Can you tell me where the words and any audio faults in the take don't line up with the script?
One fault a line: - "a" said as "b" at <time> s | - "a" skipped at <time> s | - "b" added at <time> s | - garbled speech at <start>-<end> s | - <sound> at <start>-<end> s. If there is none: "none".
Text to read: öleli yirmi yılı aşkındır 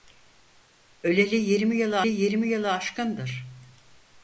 - "yirmi yılı" added at 2.1 s